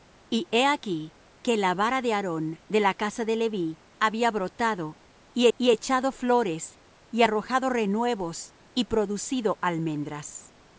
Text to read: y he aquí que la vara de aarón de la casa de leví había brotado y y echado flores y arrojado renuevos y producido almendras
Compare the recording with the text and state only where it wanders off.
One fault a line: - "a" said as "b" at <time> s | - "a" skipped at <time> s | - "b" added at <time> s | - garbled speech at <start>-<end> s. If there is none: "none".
none